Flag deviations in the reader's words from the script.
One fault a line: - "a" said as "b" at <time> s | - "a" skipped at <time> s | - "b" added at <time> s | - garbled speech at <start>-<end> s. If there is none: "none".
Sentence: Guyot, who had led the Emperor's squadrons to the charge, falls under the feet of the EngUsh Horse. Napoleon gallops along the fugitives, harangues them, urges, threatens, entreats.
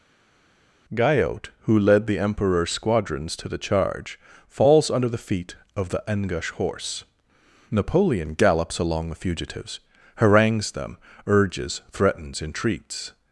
- "had" skipped at 1.8 s